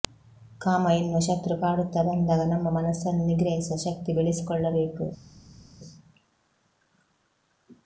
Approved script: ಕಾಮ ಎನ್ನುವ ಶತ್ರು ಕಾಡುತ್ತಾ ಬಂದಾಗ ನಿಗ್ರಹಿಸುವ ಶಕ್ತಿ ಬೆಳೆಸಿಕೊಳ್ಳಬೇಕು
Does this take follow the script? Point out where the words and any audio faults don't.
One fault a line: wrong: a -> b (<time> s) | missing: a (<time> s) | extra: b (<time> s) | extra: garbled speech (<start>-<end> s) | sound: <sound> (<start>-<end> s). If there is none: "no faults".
extra: ನಮ್ಮ ಮನಸ್ಸನ್ನು (2.5 s)